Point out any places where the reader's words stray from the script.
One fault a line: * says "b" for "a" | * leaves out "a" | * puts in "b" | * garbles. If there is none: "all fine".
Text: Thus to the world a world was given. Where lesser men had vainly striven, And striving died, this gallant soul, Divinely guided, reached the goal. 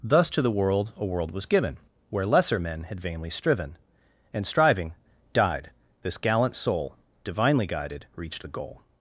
all fine